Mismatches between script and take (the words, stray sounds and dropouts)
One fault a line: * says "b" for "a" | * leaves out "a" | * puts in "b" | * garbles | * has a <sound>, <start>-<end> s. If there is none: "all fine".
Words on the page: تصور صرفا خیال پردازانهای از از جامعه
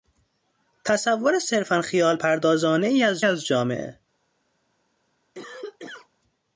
* has a cough, 5.3-6.1 s